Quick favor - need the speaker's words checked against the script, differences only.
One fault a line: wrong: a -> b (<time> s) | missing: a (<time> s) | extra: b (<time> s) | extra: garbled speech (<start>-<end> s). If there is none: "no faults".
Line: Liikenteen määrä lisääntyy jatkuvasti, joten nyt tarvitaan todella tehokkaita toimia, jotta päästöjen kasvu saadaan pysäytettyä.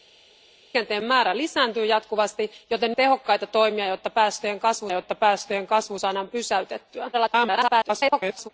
wrong: nyt tarvitaan todella tehokkaita toimia -> tehokkaita toimia jotta päästöjen kasvu (2.9 s)
extra: garbled speech (7.1-8.5 s)